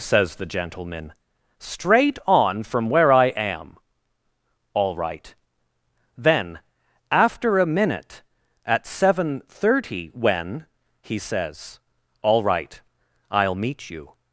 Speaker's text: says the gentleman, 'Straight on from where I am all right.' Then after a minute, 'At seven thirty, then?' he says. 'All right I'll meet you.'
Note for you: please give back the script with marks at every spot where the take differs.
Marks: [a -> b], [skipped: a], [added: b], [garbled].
says the gentleman, 'Straight on from where I am all right.' Then after a minute, 'At seven thirty, [then?' -> when] he says. 'All right I'll meet you.'